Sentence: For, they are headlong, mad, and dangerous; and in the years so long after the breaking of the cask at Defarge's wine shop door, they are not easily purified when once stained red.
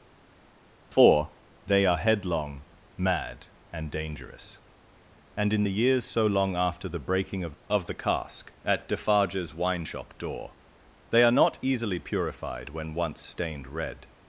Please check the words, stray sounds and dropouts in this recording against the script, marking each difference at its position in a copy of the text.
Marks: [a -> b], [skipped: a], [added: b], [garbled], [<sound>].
For, they are headlong, mad, and dangerous; and in the years so long after the breaking of [added: of] the cask at Defarge's wine shop door, they are not easily purified when once stained red.